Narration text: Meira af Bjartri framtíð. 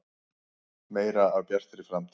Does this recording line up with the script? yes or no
yes